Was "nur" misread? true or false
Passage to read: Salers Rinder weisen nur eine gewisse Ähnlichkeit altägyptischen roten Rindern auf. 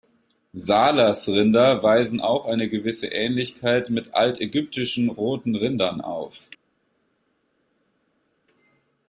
true